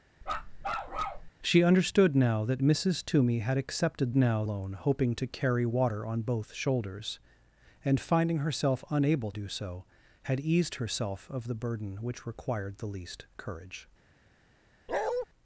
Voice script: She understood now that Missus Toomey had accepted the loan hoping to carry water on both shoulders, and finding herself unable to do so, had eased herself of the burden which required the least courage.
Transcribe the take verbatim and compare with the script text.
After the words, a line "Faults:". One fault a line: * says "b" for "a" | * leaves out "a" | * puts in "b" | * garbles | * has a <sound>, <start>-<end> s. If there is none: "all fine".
She understood now that Missus Toomey had accepted now loan hoping to carry water on both shoulders, and finding herself unable do so, had eased herself of the burden which required the least courage.
Faults:
* has a bark, 0.2-1.3 s
* says "now" for "the"
* leaves out "to"
* has a bark, 14.9-15.3 s